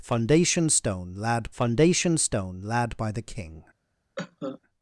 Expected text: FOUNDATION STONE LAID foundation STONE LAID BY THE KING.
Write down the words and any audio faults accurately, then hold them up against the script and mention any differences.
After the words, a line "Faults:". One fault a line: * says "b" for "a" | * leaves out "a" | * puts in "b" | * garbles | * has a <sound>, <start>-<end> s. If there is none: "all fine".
FOUNDATION STONE LAID foundation STONE LAID BY THE KING.
Faults:
* has a cough, 4.2-4.6 s